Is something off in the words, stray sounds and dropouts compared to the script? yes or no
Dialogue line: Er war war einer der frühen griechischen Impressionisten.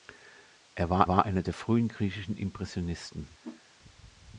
yes